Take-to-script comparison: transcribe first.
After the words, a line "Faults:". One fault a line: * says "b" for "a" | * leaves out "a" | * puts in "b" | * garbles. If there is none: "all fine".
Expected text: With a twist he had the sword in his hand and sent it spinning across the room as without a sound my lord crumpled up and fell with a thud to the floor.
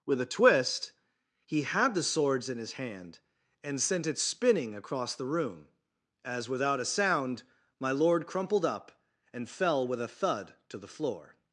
With a twist he had the swords in his hand and sent it spinning across the room as without a sound my lord crumpled up and fell with a thud to the floor.
Faults:
* says "swords" for "sword"